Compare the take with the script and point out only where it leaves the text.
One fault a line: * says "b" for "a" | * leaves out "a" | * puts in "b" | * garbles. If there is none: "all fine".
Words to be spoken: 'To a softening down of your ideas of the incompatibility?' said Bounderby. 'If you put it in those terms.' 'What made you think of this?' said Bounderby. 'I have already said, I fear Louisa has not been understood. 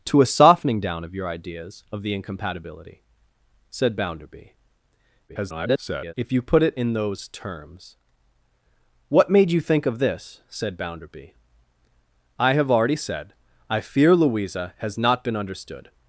* garbles